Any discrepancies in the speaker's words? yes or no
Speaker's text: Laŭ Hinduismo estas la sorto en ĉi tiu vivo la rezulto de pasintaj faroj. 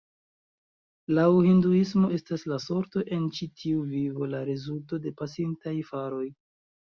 no